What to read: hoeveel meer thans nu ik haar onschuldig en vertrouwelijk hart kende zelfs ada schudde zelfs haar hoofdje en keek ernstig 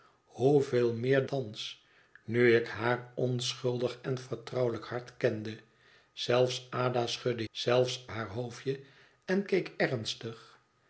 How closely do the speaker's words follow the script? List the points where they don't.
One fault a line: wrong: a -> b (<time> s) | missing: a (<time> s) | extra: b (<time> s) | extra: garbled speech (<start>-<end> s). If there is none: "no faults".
no faults